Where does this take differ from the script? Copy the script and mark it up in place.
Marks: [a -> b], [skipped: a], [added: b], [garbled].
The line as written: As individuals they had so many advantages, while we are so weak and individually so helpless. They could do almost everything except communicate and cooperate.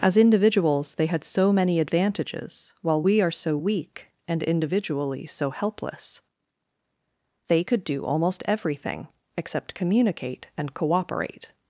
As individuals they had so many advantages, while we are so weak and individually so helpless. They could do almost everything except communicate and cooperate.